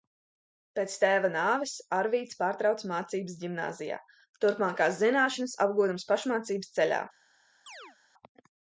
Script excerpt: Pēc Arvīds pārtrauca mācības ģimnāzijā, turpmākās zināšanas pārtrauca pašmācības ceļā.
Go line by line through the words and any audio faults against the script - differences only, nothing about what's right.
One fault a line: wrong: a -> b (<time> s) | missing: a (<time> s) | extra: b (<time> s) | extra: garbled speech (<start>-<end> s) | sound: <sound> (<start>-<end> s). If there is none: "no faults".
extra: tēva nāves (1.0 s)
wrong: pārtrauca -> apgūdams (5.7 s)
sound: chirp (7.7-8.0 s)